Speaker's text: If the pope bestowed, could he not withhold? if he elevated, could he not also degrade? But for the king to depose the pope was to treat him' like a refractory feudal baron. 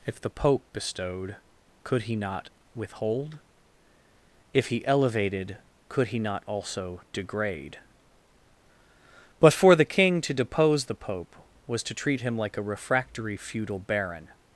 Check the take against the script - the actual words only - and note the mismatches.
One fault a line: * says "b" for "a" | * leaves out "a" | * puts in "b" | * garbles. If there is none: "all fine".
all fine